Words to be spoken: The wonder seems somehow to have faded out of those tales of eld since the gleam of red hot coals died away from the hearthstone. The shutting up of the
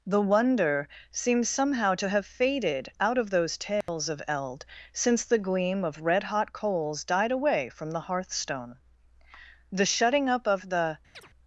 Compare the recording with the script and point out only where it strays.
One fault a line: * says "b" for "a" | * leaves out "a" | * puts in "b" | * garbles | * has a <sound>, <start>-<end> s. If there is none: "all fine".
* has a dropout, 3.8-3.9 s
* has a chirp, 11.1-11.3 s